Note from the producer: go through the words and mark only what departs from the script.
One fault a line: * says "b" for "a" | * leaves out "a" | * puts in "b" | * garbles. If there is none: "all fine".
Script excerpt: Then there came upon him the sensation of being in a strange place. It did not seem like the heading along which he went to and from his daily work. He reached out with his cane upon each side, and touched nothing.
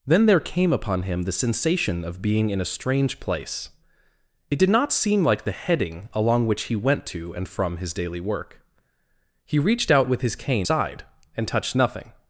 * leaves out "upon each"